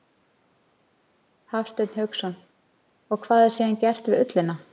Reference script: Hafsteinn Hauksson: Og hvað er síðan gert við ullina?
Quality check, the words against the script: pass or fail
pass